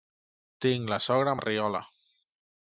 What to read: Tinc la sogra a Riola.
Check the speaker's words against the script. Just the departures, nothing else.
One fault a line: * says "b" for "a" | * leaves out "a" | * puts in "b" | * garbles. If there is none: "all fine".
all fine